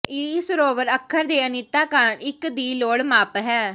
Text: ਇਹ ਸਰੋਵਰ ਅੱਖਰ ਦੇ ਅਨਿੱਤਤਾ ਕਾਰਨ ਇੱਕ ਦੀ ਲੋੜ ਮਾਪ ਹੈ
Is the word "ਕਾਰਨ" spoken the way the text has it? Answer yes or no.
yes